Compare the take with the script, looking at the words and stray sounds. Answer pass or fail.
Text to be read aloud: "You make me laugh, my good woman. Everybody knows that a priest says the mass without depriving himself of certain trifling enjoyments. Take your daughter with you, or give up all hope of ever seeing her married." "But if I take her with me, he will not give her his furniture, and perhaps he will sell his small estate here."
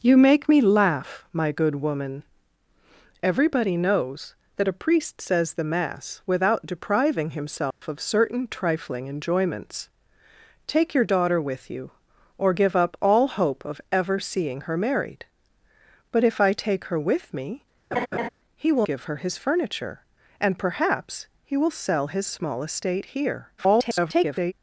fail